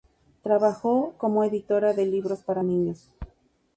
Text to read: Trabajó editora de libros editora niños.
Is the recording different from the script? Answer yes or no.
yes